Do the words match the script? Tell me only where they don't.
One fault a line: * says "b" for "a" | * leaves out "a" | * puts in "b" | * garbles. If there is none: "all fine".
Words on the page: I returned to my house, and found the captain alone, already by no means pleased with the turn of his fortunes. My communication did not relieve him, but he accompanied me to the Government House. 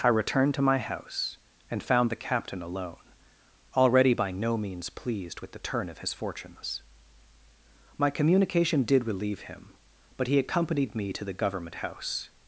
* leaves out "not"